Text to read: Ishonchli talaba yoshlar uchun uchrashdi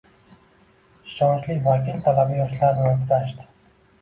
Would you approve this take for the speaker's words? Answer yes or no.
no